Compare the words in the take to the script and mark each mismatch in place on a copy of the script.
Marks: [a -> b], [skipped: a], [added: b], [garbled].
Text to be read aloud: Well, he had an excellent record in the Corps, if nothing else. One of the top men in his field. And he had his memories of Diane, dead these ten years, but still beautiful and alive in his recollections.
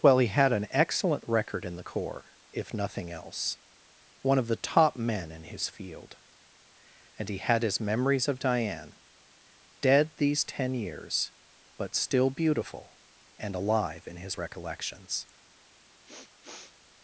Well, he had an excellent record in the Corps, if nothing else. One of the top men in his field. And he had his memories of Diane, dead these ten years, but still beautiful and alive in his recollections.